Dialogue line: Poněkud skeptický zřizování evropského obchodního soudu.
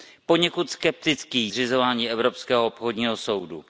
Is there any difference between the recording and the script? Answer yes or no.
no